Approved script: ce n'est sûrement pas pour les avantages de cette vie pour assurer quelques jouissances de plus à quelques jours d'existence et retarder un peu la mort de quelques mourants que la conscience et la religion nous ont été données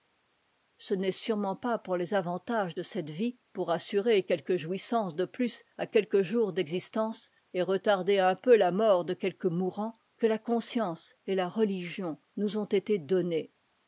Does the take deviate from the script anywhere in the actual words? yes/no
no